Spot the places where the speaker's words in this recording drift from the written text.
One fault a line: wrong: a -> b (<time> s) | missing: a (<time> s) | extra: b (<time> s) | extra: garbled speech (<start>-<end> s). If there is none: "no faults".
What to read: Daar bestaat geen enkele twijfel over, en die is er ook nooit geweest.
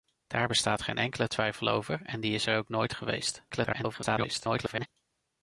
extra: garbled speech (3.5-4.9 s)